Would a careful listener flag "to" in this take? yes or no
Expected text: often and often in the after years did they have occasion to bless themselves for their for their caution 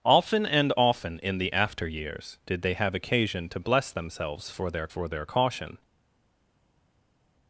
no